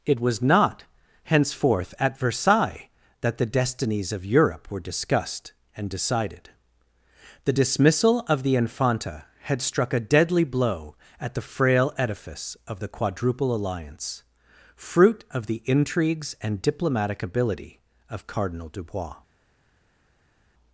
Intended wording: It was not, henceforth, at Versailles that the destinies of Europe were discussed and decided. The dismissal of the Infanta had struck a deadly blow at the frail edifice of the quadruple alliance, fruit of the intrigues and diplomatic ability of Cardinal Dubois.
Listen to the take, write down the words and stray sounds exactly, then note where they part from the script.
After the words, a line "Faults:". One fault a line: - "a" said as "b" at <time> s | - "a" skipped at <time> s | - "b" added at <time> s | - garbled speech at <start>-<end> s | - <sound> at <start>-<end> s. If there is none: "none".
It was not, henceforth, at Versailles that the destinies of Europe were discussed and decided. The dismissal of the Infanta had struck a deadly blow at the frail edifice of the quadruple alliance, fruit of the intrigues and diplomatic ability of Cardinal Dubois.
Faults:
none